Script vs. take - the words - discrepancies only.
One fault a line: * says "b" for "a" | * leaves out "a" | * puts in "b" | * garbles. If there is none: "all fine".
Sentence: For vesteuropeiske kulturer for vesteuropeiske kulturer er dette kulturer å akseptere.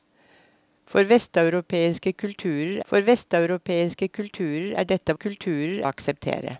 all fine